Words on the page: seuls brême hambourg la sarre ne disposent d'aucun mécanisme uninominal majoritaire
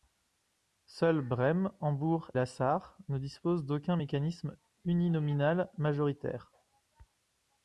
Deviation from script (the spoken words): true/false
false